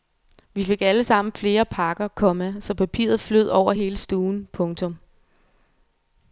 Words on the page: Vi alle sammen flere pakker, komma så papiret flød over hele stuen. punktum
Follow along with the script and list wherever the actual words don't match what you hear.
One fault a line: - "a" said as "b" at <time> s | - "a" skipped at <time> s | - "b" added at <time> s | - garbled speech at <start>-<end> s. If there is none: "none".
- "fik" added at 0.6 s